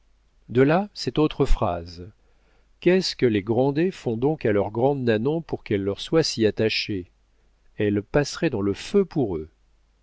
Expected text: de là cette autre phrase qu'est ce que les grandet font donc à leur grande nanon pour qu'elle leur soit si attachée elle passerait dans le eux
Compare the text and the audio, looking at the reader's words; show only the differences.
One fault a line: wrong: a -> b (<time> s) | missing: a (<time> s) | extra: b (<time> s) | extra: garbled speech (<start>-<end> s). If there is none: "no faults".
extra: feu pour (8.7 s)